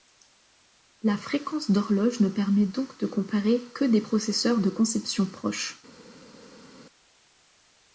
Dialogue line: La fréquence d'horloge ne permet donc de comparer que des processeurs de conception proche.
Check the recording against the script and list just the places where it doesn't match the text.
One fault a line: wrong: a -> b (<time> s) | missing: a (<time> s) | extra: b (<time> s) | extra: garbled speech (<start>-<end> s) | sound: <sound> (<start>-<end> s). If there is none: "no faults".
no faults